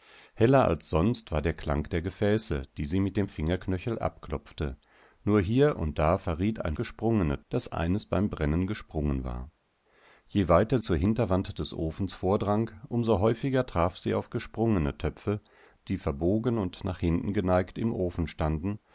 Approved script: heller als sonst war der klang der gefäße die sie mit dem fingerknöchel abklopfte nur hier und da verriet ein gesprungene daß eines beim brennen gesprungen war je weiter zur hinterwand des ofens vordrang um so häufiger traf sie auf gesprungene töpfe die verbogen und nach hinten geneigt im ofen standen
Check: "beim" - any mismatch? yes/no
no